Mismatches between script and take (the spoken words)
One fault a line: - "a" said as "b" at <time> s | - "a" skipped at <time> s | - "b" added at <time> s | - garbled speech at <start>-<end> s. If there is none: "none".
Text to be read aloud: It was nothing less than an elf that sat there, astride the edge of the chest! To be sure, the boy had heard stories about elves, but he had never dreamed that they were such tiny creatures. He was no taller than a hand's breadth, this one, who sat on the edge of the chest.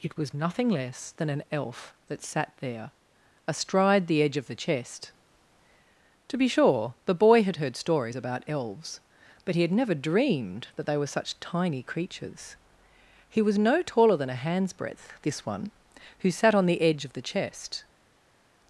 none